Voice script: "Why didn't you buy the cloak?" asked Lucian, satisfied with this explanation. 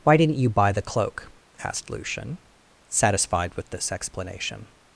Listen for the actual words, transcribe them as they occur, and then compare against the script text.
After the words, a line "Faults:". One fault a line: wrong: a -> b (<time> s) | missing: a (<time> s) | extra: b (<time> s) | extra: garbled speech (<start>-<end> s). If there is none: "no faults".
"Why didn't you buy the cloak?" asked Lucian, satisfied with this explanation.
Faults:
no faults